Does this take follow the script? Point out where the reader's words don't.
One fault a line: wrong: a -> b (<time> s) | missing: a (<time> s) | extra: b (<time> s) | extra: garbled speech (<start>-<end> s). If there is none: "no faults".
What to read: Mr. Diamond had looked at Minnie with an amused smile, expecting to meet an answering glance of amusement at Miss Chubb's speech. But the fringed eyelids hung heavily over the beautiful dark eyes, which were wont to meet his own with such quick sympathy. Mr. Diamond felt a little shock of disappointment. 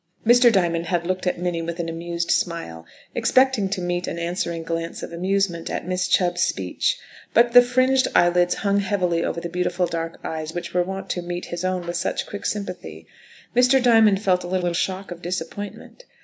extra: little (14.6 s)